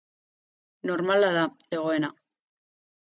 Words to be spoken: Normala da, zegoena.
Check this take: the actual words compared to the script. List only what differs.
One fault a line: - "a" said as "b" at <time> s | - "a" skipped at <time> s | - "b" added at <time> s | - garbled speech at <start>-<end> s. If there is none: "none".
none